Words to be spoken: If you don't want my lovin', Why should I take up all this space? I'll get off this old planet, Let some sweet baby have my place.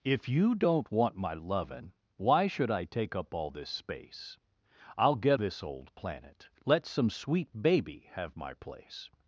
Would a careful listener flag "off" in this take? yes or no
yes